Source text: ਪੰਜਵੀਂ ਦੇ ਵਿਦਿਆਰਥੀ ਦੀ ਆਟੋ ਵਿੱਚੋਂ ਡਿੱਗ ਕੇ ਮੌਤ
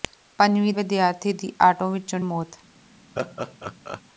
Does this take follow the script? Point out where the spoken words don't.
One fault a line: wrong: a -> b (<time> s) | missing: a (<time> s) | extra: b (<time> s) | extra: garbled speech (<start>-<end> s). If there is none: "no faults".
missing: ਦੇ (0.7 s)
missing: ਡਿੱਗ ਕੇ (2.2 s)